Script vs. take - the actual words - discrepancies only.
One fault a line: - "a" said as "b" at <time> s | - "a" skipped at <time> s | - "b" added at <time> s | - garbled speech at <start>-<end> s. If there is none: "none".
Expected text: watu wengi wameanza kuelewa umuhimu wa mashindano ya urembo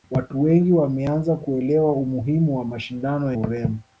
- "ya" skipped at 3.3 s